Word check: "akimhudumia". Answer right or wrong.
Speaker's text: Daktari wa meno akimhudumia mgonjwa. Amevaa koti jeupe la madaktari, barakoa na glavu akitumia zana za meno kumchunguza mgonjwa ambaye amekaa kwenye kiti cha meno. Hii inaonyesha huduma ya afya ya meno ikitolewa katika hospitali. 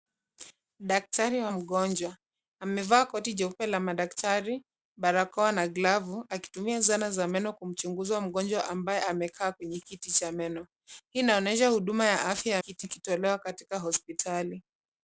wrong